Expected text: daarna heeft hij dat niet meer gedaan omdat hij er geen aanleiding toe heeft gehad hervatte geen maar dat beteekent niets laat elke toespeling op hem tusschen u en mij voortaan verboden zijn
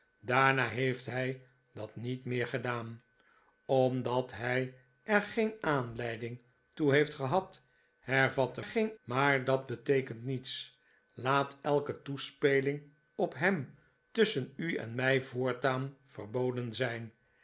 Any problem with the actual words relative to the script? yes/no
no